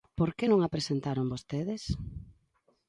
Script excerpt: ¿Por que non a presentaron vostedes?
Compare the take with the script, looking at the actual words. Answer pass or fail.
pass